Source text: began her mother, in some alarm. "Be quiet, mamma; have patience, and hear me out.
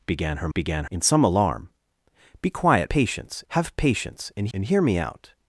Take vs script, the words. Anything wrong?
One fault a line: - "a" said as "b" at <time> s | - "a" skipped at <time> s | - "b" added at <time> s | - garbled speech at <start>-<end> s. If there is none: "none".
- "mother" said as "began" at 0.5 s
- "mamma" said as "patience" at 2.9 s
- "and" added at 4.5 s